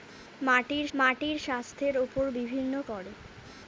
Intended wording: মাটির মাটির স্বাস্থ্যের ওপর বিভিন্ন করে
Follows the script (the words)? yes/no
yes